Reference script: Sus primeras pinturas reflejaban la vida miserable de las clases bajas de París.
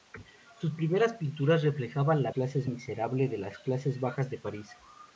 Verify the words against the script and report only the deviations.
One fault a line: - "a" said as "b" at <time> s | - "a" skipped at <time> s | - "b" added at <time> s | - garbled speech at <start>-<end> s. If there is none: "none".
- "vida" said as "clases" at 2.3 s